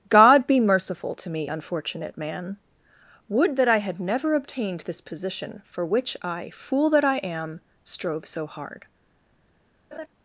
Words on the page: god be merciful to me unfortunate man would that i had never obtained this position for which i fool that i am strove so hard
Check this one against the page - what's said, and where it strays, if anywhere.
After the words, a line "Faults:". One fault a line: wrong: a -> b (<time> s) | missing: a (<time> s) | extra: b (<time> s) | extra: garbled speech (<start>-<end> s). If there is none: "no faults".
god be merciful to me unfortunate man would that i had never obtained this position for which i fool that i am strove so hard
Faults:
no faults